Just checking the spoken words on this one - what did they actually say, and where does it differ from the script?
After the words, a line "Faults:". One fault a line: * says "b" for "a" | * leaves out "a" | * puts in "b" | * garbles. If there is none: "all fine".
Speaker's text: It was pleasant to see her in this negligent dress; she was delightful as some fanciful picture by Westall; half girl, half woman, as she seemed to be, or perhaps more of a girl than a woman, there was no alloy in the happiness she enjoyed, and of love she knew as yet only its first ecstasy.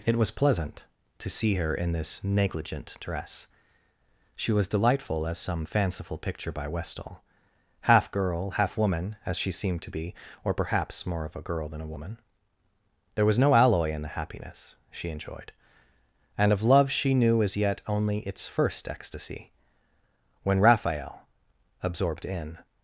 It was pleasant to see her in this negligent dress; she was delightful as some fanciful picture by Westall; half girl, half woman, as she seemed to be, or perhaps more of a girl than a woman, there was no alloy in the happiness she enjoyed, and of love she knew as yet only its first ecstasy. When Raphael, absorbed in
Faults:
* puts in "When Raphael absorbed in"